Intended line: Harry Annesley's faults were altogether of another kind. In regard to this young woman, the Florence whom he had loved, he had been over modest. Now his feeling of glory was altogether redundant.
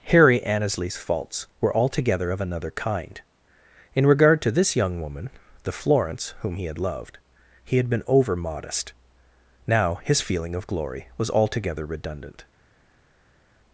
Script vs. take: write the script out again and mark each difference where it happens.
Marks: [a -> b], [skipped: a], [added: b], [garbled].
Harry Annesley's faults were altogether of another kind. In regard to this young woman, the Florence whom he had loved, he had been over modest. Now his feeling of glory was altogether redundant.